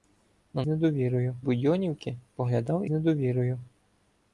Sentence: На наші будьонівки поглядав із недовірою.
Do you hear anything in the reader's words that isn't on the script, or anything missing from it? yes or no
yes